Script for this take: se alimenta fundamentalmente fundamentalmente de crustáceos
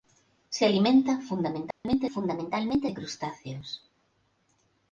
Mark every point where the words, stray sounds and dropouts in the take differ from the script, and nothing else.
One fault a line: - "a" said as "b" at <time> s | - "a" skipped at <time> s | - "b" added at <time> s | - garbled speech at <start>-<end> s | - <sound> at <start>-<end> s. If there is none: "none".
- dropout at 1.7-1.8 s